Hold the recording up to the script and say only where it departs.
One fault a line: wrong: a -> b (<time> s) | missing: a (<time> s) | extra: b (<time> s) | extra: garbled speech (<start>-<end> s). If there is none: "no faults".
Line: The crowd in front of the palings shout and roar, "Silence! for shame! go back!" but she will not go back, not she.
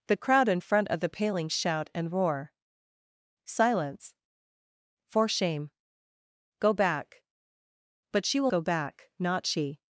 missing: not (8.5 s)